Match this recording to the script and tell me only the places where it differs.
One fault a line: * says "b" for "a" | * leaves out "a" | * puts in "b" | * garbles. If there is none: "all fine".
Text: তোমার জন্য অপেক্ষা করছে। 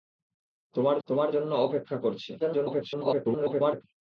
* puts in "তোমার"
* garbles